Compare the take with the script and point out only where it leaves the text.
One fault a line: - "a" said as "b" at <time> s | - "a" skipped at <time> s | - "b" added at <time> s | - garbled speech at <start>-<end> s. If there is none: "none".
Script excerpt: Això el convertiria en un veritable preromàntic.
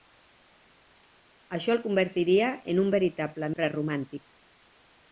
none